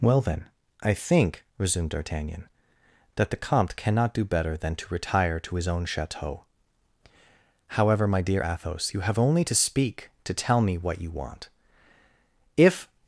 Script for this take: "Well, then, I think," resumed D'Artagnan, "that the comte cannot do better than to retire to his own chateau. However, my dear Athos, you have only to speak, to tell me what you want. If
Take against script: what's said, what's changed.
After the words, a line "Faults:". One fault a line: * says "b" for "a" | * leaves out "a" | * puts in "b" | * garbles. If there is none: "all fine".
"Well, then, I think," resumed D'Artagnan, "that the comte cannot do better than to retire to his own chateau. However, my dear Athos, you have only to speak, to tell me what you want. If
Faults:
all fine